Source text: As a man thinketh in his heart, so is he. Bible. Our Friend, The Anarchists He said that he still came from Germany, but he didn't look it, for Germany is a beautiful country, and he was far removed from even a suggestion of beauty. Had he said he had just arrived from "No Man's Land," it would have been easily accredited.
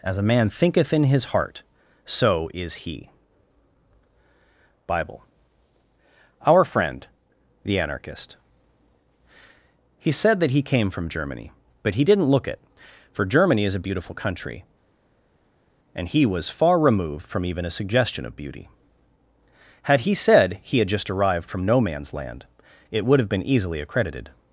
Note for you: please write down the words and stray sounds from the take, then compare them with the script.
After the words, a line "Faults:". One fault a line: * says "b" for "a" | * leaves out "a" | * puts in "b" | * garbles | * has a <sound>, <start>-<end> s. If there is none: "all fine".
As a man thinketh in his heart, so is he. Bible. Our Friend, The Anarchist He said that he came from Germany, but he didn't look it, for Germany is a beautiful country, and he was far removed from even a suggestion of beauty. Had he said he had just arrived from "No Man's Land," it would have been easily accredited.
Faults:
* says "Anarchist" for "Anarchists"
* leaves out "still"